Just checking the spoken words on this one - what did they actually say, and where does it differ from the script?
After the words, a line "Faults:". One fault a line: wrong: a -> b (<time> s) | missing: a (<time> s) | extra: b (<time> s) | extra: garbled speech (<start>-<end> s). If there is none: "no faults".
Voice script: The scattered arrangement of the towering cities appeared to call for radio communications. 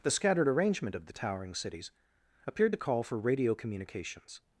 The scattered arrangement of the towering cities appeared to call for radio communications.
Faults:
no faults